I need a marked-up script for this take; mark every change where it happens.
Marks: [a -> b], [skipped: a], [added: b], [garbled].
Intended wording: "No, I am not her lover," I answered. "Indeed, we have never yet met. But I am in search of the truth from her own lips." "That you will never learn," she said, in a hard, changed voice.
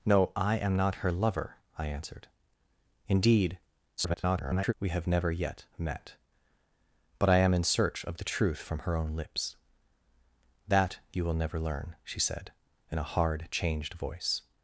"No, I am not her lover," I answered. "Indeed, [garbled] we have never yet met. But I am in search of the truth from her own lips." "That you will never learn," she said, in a hard, changed voice.